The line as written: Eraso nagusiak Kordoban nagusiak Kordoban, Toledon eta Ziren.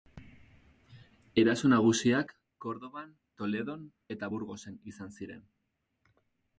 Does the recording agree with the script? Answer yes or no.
no